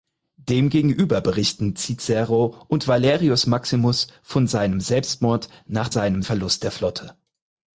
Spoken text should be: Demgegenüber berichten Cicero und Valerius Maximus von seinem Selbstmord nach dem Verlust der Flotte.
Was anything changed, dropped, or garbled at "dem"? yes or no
yes